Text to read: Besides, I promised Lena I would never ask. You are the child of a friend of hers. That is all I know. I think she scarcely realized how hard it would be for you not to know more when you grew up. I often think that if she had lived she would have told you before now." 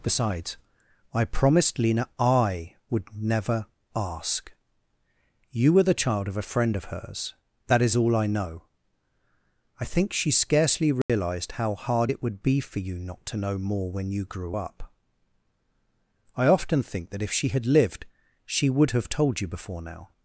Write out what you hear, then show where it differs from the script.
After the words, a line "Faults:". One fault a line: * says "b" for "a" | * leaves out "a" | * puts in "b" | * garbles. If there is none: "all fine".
Besides, I promised Lena I would never ask. You were the child of a friend of hers. That is all I know. I think she scarcely realized how hard it would be for you not to know more when you grew up. I often think that if she had lived she would have told you before now."
Faults:
* says "were" for "are"